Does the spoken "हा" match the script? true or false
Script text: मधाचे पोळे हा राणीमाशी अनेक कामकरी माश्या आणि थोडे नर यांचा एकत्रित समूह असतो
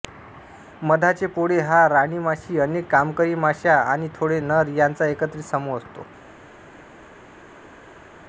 true